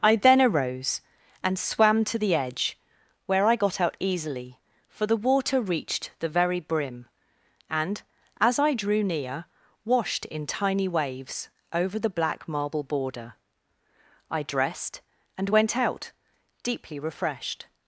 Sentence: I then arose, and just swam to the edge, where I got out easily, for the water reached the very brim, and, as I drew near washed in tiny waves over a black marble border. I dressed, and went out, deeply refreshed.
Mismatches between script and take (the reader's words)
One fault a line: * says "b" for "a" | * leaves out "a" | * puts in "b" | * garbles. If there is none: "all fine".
* leaves out "just"
* says "the" for "a"